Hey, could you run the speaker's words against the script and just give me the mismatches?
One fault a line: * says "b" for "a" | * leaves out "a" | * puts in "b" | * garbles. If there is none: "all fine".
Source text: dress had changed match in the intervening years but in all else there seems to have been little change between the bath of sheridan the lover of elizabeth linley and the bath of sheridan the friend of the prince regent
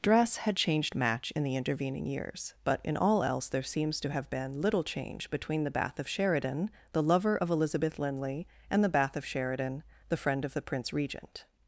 all fine